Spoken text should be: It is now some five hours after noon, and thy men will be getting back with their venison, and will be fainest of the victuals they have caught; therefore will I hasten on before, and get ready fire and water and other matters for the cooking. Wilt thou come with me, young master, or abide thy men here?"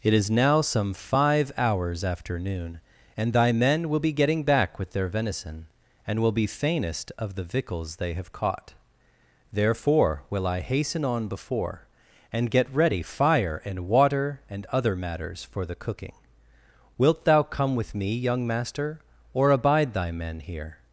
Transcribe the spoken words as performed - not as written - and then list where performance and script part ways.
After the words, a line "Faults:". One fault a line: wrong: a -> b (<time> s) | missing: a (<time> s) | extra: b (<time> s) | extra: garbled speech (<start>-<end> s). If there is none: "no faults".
It is now some five hours after noon, and thy men will be getting back with their venison, and will be fainest of the victuals they have caught; therefore will I hasten on before, and get ready fire and water and other matters for the cooking. Wilt thou come with me, young master, or abide thy men here?"
Faults:
no faults